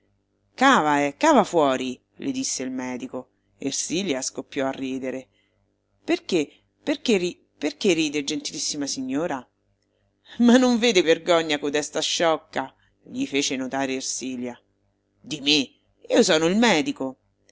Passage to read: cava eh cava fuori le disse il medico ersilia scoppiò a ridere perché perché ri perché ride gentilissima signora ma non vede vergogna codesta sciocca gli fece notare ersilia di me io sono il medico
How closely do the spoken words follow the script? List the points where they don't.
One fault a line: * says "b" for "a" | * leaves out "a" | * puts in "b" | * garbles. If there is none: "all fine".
all fine